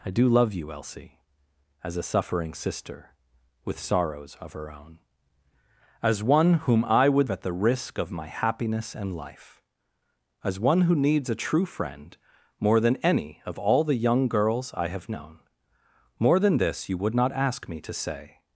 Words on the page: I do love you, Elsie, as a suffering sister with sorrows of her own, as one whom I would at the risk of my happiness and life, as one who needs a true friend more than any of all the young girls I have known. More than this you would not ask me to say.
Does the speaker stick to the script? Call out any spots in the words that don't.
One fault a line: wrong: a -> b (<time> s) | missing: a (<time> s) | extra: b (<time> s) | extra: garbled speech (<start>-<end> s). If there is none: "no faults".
no faults